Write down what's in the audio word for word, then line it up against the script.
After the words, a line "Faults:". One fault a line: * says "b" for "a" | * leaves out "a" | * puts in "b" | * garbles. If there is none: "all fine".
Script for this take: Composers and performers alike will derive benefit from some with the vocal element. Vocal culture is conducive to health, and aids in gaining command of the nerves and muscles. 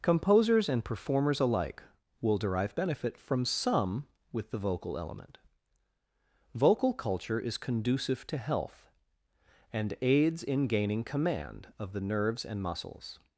Composers and performers alike will derive benefit from some with the vocal element. Vocal culture is conducive to health, and aids in gaining command of the nerves and muscles.
Faults:
all fine